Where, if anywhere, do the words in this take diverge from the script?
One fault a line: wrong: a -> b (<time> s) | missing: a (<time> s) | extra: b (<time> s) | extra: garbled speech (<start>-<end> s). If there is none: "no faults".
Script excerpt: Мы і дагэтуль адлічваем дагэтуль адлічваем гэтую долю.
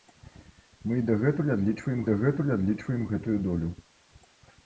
no faults